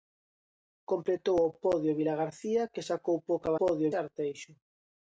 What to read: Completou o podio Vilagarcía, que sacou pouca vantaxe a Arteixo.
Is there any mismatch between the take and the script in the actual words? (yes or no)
yes